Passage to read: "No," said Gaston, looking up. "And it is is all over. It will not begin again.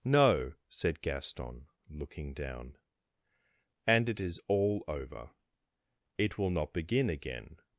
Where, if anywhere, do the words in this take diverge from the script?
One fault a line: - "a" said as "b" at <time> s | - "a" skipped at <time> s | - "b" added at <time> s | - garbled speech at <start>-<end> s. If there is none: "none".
- "up" said as "down" at 2.3 s
- "is" skipped at 4.4 s